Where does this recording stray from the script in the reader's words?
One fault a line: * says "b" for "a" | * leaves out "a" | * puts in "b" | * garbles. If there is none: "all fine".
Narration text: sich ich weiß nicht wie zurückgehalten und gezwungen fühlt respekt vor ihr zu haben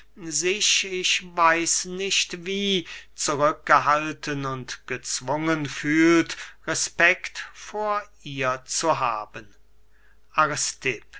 all fine